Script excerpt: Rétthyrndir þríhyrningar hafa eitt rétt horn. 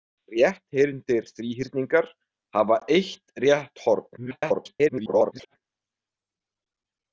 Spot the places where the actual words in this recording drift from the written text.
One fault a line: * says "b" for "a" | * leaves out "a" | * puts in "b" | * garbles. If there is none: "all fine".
* garbles